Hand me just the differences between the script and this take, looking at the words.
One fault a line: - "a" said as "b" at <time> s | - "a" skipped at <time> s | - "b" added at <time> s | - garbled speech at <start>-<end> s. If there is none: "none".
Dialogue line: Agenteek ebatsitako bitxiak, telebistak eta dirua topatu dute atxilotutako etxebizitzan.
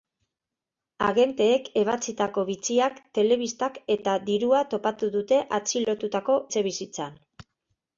none